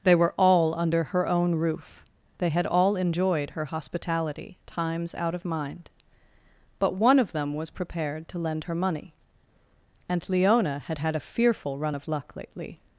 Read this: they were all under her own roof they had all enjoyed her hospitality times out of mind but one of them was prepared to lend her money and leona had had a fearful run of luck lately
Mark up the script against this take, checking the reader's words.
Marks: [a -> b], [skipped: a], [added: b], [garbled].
they were all under her own roof they had all enjoyed her hospitality times out of mind but one of them was prepared to lend her money and leona had had a fearful run of luck lately